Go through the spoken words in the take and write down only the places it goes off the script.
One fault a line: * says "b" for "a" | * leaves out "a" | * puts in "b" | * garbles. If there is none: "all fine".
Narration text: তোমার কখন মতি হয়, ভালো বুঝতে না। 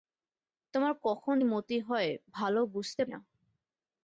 all fine